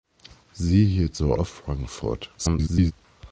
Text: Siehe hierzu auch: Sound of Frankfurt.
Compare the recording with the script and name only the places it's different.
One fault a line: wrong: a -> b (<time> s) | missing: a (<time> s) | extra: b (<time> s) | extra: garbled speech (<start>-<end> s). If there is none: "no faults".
missing: auch Sound (1.3 s)
extra: garbled speech (2.4-2.9 s)